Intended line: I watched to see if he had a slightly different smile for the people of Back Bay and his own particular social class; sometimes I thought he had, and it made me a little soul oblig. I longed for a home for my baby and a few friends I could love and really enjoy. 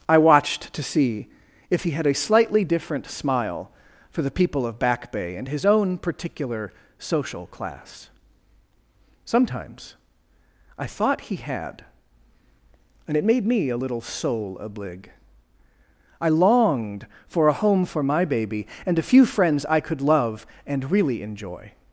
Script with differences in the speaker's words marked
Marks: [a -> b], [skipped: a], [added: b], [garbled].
I watched to see if he had a slightly different smile for the people of Back Bay and his own particular social class; sometimes I thought he had, and it made me a little soul oblig. I longed for a home for my baby and a few friends I could love and really enjoy.